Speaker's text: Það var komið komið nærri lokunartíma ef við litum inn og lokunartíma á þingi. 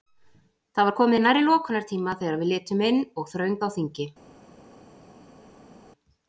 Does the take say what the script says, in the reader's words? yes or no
no